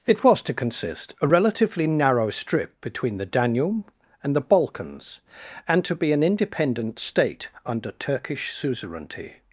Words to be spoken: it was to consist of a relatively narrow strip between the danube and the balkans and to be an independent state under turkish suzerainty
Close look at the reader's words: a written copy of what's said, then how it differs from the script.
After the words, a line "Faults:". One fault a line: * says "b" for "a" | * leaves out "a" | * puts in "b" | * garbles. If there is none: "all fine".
it was to consist a relatively narrow strip between the danube and the balkans and to be an independent state under turkish suzerainty
Faults:
* leaves out "of"